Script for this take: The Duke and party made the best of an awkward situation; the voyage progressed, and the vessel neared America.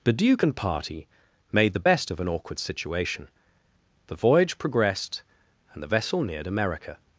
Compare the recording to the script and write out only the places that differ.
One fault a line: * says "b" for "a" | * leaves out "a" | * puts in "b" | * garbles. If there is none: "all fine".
all fine